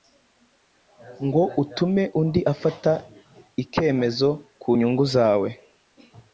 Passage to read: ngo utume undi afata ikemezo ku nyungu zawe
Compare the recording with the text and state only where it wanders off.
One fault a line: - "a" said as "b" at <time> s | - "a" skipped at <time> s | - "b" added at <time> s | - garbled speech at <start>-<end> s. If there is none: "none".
none